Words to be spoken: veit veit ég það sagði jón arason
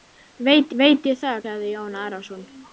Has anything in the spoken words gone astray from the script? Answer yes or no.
no